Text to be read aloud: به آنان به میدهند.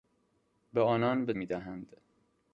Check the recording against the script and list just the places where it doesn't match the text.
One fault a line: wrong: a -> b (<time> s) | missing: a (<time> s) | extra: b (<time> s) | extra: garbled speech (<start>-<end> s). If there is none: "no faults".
no faults